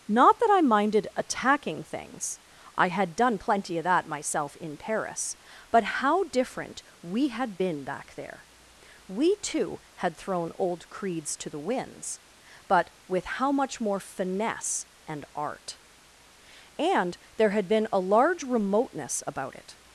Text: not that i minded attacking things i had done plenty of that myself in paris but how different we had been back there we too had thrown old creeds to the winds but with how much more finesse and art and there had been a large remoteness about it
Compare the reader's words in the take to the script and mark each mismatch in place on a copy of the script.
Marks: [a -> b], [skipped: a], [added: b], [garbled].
not that i minded attacking things i had done plenty of that myself in paris but how different we had been back there we too had thrown old creeds to the winds but with how much more finesse and art and there had been a large remoteness about it